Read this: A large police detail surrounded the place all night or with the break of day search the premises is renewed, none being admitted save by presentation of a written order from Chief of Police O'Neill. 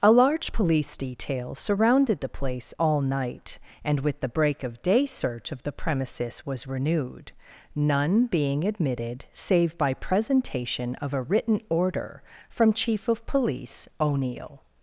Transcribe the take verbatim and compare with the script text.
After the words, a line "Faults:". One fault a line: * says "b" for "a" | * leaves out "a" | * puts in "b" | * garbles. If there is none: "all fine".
A large police detail surrounded the place all night and with the break of day search of the premises was renewed, none being admitted save by presentation of a written order from Chief of Police O'Neill.
Faults:
* says "and" for "or"
* puts in "of"
* says "was" for "is"